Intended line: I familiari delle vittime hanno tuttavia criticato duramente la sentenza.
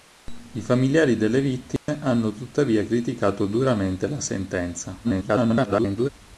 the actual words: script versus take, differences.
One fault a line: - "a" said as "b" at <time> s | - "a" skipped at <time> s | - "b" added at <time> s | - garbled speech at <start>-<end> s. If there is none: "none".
- garbled speech at 5.0-6.1 s